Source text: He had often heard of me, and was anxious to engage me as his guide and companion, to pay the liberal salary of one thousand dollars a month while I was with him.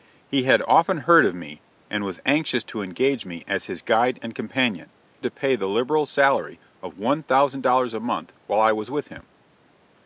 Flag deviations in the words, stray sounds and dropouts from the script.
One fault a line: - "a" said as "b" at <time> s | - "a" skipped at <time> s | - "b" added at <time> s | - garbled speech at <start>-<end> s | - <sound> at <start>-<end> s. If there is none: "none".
none